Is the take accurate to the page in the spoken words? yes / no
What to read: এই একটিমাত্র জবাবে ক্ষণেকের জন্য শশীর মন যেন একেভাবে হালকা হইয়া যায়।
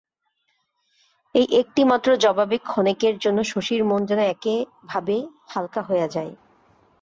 yes